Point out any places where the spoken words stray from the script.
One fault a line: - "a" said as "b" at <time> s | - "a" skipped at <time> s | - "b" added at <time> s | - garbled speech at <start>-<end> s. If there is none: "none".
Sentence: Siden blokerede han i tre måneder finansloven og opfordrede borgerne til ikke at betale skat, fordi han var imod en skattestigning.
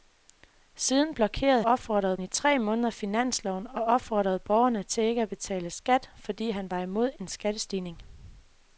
- "han" said as "opfordrede" at 1.6 s